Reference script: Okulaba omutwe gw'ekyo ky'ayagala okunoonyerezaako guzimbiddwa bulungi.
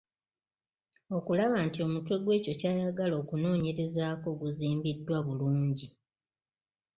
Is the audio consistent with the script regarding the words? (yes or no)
no